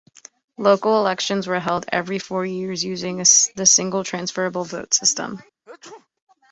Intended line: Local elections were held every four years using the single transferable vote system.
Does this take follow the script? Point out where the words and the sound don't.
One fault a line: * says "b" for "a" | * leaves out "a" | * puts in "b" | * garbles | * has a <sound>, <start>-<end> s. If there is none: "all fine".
* has a sneeze, 5.7-6.1 s